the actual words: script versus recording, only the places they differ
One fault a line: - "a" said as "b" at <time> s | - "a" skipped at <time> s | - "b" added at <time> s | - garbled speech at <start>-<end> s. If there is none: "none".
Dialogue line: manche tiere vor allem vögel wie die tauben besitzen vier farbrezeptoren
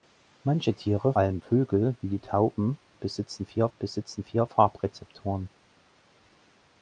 - "vor" skipped at 1.1 s
- "besitzen vier" added at 3.8 s